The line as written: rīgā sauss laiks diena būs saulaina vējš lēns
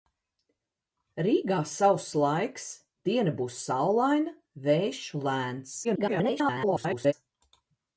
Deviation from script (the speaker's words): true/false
true